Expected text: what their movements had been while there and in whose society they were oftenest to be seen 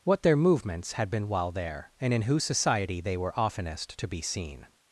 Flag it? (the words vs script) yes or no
no